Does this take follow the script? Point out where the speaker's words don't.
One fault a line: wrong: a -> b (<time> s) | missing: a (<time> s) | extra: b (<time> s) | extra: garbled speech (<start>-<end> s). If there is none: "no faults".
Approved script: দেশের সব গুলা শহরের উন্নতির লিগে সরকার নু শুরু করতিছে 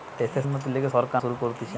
missing: সব গুলা শহরের (0.5 s)
missing: নু (1.2 s)